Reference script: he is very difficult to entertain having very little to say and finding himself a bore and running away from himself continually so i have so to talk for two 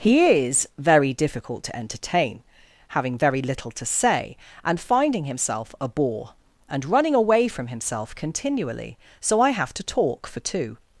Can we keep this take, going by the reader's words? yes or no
no